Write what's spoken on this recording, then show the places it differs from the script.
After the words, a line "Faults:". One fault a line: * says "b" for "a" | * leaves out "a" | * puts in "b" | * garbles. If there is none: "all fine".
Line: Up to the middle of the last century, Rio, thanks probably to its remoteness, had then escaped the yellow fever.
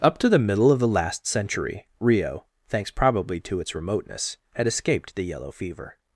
Up to the middle of the last century, Rio, thanks probably to its remoteness, had escaped the yellow fever.
Faults:
* leaves out "then"